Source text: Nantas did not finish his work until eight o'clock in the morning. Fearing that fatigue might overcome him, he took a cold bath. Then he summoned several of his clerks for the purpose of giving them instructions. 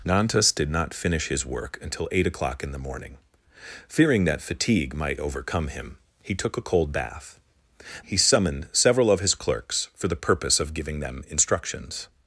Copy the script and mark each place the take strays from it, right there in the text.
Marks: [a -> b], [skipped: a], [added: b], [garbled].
Nantas did not finish his work until eight o'clock in the morning. Fearing that fatigue might overcome him, he took a cold bath. [skipped: Then] he summoned several of his clerks for the purpose of giving them instructions.